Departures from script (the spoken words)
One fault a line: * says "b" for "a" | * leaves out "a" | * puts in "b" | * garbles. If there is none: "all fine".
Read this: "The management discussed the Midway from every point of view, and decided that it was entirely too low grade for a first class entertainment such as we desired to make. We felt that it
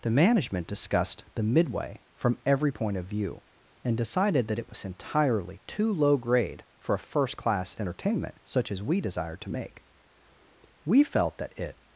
all fine